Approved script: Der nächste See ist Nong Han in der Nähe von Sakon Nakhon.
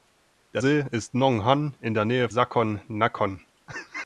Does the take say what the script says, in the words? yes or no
no